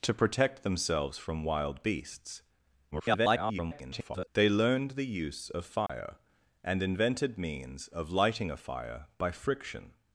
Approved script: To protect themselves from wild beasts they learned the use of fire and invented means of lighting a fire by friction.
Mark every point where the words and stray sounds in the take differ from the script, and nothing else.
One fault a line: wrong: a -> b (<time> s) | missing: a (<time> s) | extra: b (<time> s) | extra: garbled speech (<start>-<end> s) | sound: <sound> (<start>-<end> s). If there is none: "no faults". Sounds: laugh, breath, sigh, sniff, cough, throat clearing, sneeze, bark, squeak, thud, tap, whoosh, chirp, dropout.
extra: garbled speech (2.9-4.3 s)
sound: dropout (5.9-5.9 s)